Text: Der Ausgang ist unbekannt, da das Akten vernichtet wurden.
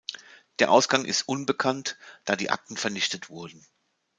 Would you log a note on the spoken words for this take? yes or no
yes